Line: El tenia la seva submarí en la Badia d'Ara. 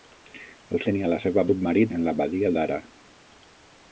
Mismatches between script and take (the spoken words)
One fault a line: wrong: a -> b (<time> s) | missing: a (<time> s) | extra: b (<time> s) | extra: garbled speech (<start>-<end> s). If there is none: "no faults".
no faults